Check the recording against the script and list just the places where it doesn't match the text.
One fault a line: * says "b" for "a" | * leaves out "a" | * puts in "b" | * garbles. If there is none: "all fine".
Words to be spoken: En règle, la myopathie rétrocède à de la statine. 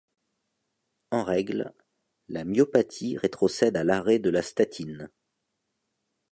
* puts in "l'arrêt"